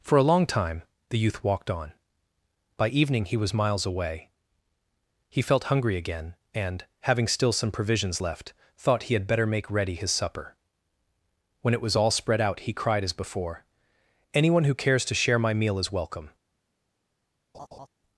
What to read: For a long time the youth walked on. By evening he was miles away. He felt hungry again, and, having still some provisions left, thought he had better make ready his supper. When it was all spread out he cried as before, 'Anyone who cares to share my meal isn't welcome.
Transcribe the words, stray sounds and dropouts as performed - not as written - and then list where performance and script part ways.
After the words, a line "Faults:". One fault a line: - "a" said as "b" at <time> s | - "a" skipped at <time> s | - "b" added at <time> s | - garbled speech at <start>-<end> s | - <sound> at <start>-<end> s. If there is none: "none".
For a long time the youth walked on. By evening he was miles away. He felt hungry again, and, having still some provisions left, thought he had better make ready his supper. When it was all spread out he cried as before, 'Anyone who cares to share my meal is welcome.
Faults:
- "isn't" said as "is" at 15.8 s
- laugh at 17.5-17.9 s